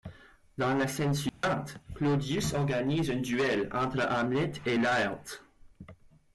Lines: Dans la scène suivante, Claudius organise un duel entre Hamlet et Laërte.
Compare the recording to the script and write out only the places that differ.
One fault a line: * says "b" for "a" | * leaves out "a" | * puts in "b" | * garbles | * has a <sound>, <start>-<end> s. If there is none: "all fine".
* has a dropout, 1.3-1.4 s